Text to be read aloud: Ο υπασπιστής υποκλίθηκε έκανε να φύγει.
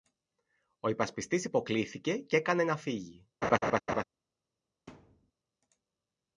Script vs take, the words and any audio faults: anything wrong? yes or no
yes